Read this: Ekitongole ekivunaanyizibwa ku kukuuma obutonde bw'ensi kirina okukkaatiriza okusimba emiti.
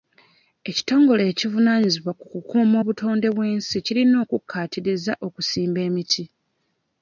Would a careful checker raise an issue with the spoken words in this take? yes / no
no